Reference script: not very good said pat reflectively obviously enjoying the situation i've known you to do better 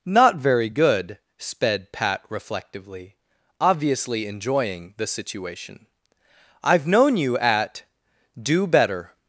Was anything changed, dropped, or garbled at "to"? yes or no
yes